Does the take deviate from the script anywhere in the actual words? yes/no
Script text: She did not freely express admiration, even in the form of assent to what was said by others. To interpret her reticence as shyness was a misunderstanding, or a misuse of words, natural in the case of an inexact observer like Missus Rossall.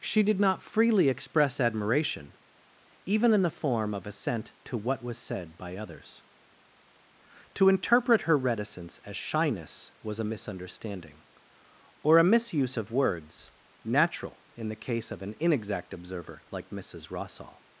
no